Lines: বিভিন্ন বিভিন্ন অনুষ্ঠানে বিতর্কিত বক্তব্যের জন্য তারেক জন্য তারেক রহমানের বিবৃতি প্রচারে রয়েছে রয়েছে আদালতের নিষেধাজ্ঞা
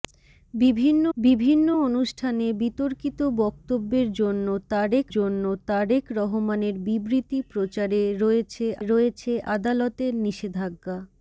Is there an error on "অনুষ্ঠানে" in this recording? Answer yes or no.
no